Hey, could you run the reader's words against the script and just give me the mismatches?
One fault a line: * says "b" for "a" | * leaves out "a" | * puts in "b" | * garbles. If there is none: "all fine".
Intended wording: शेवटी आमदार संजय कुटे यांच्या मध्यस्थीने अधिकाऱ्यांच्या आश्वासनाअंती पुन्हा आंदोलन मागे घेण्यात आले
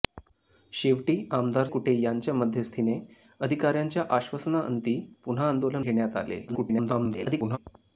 * leaves out "संजय"
* leaves out "मागे"
* garbles